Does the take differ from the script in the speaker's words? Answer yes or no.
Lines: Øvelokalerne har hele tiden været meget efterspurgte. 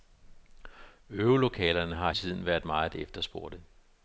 yes